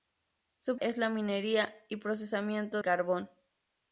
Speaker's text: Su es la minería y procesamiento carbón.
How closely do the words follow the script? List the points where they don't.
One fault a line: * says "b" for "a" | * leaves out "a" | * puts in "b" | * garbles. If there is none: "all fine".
all fine